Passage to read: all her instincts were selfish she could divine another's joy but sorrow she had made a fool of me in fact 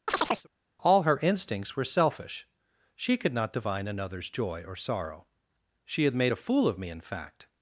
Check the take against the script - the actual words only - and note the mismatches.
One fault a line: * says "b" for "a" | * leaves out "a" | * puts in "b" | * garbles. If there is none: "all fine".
* puts in "not"
* says "or" for "but"